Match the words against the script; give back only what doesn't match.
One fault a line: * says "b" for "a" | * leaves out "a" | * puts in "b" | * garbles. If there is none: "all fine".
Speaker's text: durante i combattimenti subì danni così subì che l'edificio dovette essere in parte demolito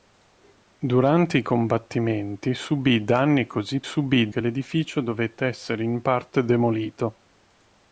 all fine